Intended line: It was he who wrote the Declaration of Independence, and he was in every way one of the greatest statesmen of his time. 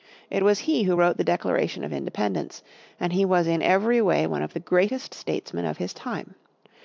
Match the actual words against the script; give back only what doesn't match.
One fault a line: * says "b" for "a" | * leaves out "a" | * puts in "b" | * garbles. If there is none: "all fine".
all fine